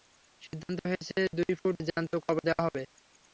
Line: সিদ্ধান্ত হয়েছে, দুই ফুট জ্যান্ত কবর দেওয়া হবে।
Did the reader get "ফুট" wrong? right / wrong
right